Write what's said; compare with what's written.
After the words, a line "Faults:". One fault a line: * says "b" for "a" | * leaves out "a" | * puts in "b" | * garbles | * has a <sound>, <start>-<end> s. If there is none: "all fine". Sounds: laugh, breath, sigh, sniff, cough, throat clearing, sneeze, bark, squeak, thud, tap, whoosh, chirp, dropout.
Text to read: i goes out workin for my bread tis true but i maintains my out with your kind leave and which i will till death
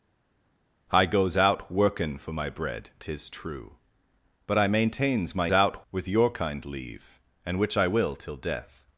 i goes out workin for my bread tis true but i maintains my out with your kind leave and which i will till death
Faults:
all fine